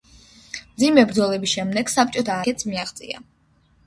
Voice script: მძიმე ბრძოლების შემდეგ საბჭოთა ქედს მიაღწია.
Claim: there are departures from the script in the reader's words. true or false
false